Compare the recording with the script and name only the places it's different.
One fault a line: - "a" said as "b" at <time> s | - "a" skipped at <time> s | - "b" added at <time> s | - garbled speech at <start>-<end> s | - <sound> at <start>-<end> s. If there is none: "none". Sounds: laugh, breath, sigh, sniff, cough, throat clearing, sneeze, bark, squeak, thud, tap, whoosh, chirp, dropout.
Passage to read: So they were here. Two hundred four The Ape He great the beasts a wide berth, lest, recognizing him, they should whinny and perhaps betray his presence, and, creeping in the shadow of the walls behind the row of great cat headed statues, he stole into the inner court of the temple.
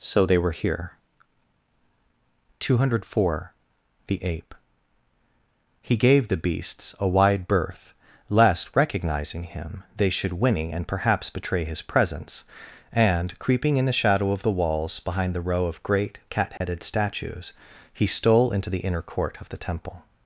- "great" said as "gave" at 6.0 s
- dropout at 16.6-16.6 s